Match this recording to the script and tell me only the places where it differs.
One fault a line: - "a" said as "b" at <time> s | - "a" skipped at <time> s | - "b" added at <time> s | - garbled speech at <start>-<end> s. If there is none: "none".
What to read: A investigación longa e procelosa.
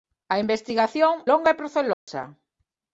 none